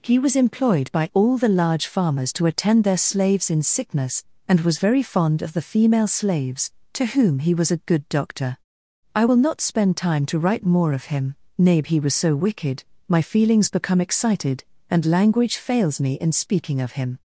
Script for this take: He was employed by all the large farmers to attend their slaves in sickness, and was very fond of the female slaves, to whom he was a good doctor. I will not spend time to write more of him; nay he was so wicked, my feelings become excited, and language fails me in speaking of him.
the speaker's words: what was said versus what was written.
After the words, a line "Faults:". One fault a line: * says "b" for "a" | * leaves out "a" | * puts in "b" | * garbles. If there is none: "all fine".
He was employed by all the large farmers to attend their slaves in sickness, and was very fond of the female slaves, to whom he was a good doctor. I will not spend time to write more of him; nay he was so wicked, my feelings become excited, and language fails me in speaking of him.
Faults:
all fine